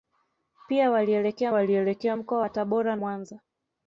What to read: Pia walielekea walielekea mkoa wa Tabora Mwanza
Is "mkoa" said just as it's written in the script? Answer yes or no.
yes